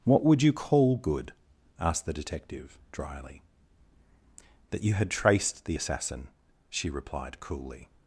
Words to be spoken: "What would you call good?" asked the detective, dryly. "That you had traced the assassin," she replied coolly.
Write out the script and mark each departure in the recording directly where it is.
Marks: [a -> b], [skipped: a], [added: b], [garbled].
"What would you call good?" asked the detective, dryly. "That you had traced the assassin," she replied coolly.